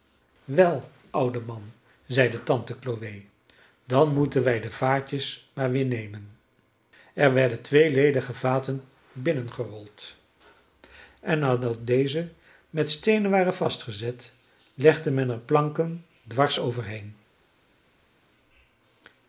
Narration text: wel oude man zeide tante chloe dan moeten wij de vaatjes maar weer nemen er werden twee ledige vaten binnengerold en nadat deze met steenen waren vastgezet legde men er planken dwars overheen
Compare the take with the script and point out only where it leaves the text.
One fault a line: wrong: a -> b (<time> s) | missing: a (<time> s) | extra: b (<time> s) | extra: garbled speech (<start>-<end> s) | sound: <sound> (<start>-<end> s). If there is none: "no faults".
no faults